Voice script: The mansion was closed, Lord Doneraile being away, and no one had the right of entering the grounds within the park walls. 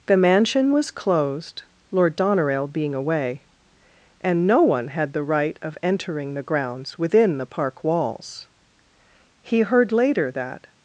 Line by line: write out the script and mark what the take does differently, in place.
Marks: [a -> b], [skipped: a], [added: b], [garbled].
The mansion was closed, Lord Doneraile being away, and no one had the right of entering the grounds within the park walls. [added: He heard later that]